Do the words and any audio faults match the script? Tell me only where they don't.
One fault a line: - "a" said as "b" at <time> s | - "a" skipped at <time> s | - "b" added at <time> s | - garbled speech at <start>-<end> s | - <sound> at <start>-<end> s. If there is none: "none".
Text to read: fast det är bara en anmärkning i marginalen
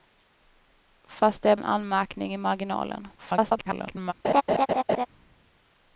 - "bara" skipped at 1.6 s
- garbled speech at 3.2-4.1 s
- laugh at 4.2-5.1 s